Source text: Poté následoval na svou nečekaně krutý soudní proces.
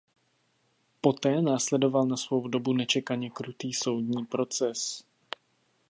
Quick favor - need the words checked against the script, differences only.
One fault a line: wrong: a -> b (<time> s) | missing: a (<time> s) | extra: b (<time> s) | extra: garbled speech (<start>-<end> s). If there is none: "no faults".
extra: dobu (2.5 s)